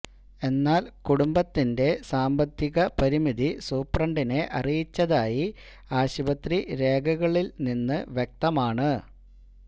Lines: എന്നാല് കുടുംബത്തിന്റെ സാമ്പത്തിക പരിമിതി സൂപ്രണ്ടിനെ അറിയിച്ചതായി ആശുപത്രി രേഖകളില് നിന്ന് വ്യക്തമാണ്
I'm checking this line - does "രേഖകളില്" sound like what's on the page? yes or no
yes